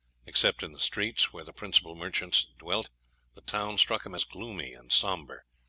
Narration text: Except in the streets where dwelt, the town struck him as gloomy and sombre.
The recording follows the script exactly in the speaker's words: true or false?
false